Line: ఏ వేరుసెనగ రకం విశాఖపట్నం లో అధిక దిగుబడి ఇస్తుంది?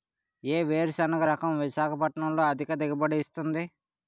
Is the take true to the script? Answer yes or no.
yes